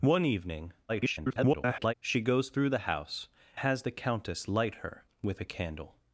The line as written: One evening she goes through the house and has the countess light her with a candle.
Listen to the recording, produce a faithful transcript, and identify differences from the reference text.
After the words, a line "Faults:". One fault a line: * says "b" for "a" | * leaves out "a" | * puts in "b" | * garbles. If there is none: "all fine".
One evening [garbled] she goes through the house has the countess light her with a candle.
Faults:
* garbles
* leaves out "and"